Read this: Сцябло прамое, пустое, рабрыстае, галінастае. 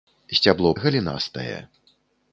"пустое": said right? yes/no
no